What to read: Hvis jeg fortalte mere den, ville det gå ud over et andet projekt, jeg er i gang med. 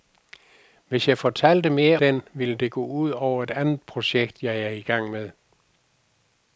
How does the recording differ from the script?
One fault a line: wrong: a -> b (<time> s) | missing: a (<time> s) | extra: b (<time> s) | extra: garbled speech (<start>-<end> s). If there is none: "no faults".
no faults